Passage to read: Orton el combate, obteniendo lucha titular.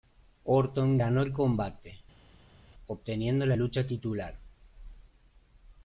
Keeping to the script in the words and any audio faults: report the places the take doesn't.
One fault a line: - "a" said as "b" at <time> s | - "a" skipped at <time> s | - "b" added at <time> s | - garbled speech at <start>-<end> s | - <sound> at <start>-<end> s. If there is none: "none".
- "ganó" added at 0.9 s
- "la" added at 3.4 s